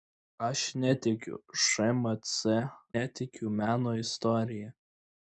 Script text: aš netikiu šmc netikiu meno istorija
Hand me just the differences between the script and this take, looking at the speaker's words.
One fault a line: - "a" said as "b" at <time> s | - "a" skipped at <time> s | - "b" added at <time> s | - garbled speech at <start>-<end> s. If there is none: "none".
none